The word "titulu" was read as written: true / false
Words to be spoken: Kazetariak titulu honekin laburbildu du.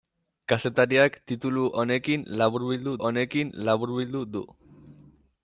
true